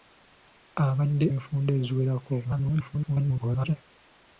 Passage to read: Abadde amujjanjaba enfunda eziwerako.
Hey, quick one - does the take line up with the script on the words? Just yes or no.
no